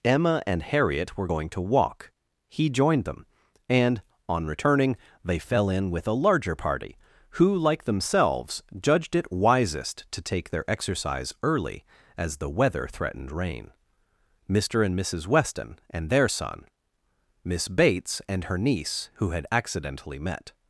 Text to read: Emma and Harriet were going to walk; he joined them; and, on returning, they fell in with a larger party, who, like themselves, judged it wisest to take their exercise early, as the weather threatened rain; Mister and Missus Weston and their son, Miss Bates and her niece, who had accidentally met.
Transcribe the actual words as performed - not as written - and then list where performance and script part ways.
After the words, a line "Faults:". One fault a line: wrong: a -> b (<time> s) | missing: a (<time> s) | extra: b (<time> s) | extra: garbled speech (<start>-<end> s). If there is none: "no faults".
Emma and Harriet were going to walk; he joined them; and, on returning, they fell in with a larger party, who, like themselves, judged it wisest to take their exercise early, as the weather threatened rain; Mister and Missus Weston and their son, Miss Bates and her niece, who had accidentally met.
Faults:
no faults